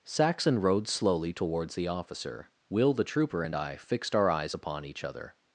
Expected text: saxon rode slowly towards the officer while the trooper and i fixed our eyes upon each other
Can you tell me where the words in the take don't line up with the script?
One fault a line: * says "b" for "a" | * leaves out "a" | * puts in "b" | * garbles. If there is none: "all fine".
* says "will" for "while"